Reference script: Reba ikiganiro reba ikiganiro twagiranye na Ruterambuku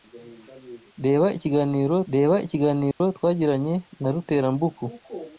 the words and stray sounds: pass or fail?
fail